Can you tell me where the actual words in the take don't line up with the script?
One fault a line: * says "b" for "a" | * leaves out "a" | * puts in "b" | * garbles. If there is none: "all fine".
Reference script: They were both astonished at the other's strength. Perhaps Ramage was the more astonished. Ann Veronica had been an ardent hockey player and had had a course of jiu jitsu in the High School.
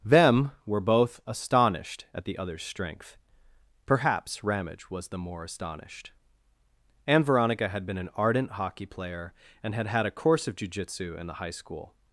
* says "Them" for "They"